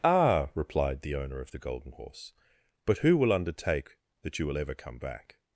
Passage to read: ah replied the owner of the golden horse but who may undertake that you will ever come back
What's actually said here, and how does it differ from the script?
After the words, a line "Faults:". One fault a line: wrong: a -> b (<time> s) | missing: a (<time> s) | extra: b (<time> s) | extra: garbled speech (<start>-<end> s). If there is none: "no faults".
ah replied the owner of the golden horse but who will undertake that you will ever come back
Faults:
wrong: may -> will (3.1 s)